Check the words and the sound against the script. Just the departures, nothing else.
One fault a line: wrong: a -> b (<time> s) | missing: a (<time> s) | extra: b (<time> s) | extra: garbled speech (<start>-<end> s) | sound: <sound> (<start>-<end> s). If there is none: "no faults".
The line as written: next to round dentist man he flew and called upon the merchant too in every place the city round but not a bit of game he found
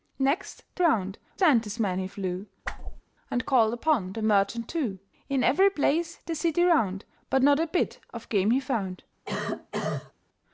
sound: whoosh (2.6-3.0 s)
sound: cough (9.3-10.1 s)